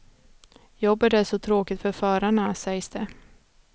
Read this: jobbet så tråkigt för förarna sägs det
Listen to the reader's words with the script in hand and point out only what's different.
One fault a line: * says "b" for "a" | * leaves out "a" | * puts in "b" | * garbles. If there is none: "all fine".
* puts in "är"